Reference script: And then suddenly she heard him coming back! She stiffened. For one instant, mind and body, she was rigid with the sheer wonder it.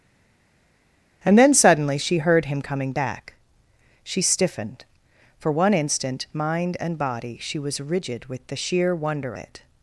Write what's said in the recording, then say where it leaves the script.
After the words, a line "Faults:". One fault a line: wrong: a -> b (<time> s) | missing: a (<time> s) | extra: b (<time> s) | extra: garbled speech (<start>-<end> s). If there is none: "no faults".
And then suddenly she heard him coming back! She stiffened. For one instant, mind and body, she was rigid with the sheer wonder it.
Faults:
no faults